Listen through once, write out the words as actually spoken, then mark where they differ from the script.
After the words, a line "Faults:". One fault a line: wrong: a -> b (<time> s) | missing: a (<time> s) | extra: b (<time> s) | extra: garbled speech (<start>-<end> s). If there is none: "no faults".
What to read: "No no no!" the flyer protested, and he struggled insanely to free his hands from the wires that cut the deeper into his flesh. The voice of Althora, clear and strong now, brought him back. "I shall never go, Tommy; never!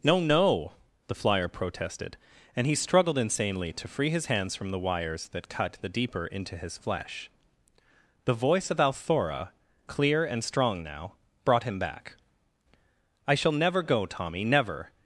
"No no!" the flyer protested, and he struggled insanely to free his hands from the wires that cut the deeper into his flesh. The voice of Althora, clear and strong now, brought him back. "I shall never go, Tommy; never!
Faults:
missing: no (0.7 s)